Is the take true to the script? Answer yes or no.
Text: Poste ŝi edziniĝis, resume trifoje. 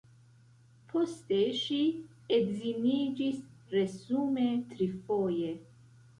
yes